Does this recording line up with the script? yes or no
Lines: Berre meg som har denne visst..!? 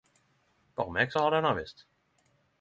yes